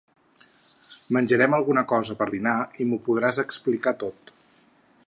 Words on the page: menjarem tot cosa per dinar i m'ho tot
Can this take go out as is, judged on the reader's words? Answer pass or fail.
fail